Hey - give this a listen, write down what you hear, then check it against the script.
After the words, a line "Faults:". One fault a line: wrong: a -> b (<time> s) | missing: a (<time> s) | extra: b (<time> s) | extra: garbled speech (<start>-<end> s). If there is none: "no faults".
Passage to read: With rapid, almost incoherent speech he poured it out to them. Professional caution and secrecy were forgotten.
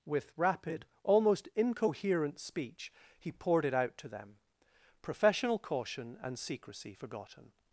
With rapid, almost incoherent speech he poured it out to them. Professional caution and secrecy forgotten.
Faults:
missing: were (6.9 s)